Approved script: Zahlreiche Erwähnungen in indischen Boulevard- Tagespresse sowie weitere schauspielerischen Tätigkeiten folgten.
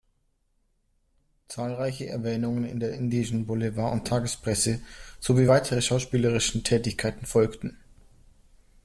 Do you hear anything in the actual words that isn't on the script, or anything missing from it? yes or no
yes